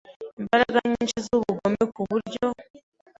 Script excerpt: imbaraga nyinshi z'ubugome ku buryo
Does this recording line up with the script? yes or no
yes